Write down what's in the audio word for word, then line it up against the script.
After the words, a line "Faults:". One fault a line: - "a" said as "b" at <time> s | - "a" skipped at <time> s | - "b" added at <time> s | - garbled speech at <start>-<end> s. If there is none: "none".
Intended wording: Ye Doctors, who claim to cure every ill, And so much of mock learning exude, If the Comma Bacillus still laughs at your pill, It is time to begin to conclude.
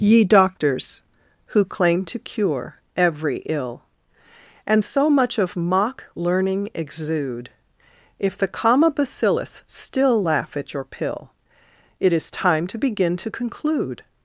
Ye Doctors, who claim to cure every ill, And so much of mock learning exude, If the Comma Bacillus still laugh at your pill, It is time to begin to conclude.
Faults:
- "laughs" said as "laugh" at 10.2 s